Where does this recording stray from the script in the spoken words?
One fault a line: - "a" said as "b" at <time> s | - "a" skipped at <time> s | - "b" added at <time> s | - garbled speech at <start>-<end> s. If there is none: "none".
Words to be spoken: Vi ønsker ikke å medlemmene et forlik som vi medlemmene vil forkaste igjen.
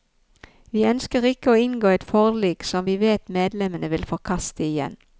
- "medlemmene" said as "inngå" at 1.6 s
- "vet" added at 3.0 s